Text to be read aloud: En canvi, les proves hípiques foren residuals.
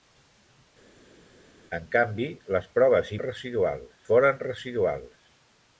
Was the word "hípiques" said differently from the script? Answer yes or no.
yes